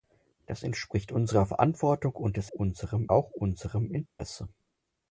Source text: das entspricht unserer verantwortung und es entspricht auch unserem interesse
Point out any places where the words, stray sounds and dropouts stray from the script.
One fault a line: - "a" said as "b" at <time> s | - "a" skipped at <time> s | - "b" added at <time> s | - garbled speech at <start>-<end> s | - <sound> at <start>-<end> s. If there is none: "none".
- "entspricht" said as "unserem" at 2.5 s
- dropout at 4.1-4.2 s